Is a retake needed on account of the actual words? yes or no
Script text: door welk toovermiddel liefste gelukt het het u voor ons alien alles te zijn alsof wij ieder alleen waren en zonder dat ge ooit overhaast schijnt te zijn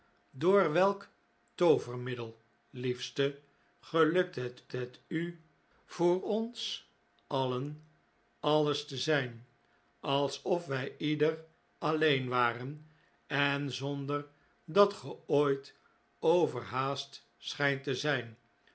no